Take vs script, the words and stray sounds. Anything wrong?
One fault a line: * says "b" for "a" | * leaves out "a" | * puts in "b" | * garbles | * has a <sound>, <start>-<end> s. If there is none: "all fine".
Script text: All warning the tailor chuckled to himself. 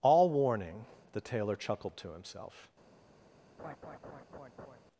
* has a laugh, 3.6-4.8 s